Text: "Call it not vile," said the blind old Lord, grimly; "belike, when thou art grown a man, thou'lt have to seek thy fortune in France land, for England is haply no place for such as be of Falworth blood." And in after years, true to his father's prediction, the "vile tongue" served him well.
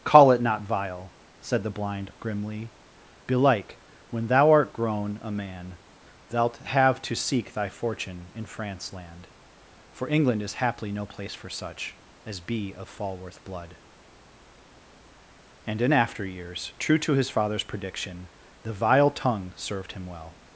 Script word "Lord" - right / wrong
wrong